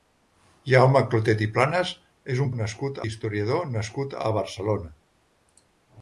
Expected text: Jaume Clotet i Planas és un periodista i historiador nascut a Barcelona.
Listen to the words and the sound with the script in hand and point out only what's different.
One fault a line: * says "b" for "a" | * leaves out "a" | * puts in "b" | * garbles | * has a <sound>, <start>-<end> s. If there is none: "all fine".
* says "nascut" for "periodista"